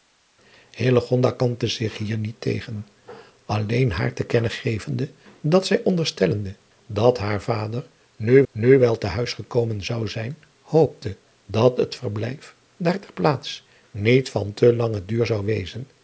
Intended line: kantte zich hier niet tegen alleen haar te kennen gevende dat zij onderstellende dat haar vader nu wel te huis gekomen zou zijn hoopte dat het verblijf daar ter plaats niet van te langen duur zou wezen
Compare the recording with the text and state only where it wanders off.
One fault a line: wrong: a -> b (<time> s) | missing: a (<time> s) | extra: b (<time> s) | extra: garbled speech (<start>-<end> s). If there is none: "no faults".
extra: nu (8.5 s)